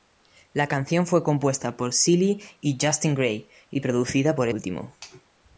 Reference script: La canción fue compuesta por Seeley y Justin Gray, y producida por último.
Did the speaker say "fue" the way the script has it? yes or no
yes